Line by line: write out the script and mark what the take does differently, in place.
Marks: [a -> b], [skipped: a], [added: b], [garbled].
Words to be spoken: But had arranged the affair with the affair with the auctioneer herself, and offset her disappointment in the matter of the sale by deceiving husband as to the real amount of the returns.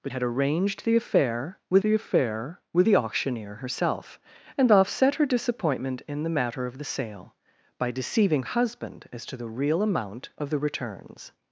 But had arranged the affair with the affair with the auctioneer herself, and offset her disappointment in the matter of the sale by deceiving husband as to the real amount of the returns.